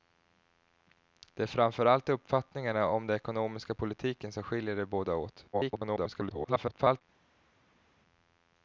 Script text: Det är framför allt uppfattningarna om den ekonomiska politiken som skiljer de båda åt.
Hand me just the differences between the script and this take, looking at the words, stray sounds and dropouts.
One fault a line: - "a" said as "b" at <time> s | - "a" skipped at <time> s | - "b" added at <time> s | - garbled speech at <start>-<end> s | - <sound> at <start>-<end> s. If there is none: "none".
- garbled speech at 5.5-7.0 s